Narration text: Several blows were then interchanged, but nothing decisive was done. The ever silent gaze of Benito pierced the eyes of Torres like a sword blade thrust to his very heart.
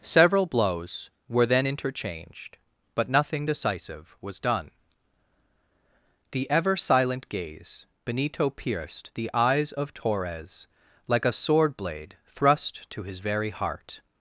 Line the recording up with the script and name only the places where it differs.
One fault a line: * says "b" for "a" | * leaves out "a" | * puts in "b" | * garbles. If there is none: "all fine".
* leaves out "of"